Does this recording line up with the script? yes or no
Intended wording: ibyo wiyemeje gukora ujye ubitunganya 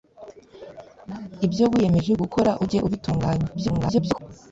no